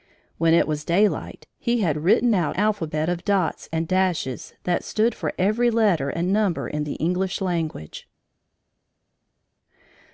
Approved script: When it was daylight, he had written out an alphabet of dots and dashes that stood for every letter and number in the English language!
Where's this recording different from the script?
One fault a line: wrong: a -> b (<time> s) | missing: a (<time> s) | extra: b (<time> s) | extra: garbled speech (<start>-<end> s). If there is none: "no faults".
missing: an (2.6 s)